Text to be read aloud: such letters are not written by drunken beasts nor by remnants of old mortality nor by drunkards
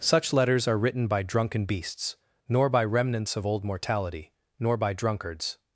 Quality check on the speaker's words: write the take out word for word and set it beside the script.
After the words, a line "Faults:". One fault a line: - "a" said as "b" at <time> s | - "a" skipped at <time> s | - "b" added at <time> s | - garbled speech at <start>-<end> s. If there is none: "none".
such letters are written by drunken beasts nor by remnants of old mortality nor by drunkards
Faults:
- "not" skipped at 0.8 s